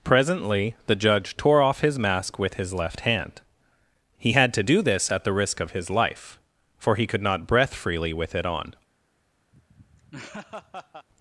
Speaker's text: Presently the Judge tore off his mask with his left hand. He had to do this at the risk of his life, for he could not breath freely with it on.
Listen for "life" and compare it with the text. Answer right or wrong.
right